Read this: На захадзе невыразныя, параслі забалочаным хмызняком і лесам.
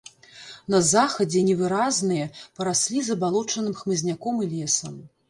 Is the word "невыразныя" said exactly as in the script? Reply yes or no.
yes